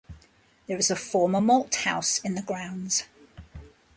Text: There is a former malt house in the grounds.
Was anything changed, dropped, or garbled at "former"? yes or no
no